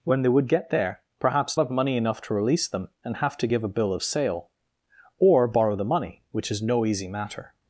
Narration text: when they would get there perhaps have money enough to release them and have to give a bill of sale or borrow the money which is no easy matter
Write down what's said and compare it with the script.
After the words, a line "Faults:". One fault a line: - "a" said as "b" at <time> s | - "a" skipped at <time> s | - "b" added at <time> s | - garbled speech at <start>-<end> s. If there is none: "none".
when they would get there perhaps have money enough to release them and have to give a bill of sale or borrow the money which is no easy matter
Faults:
none